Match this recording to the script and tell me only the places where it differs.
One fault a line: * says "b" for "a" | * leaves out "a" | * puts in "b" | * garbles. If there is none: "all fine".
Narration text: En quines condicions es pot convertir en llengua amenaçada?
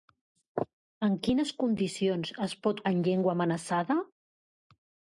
* leaves out "convertir"